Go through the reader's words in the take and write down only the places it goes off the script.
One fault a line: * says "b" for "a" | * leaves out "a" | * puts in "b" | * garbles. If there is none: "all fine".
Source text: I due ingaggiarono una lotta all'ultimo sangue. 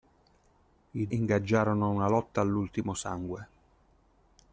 * leaves out "due"